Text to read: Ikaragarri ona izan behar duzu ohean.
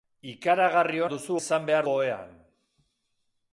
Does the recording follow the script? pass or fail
fail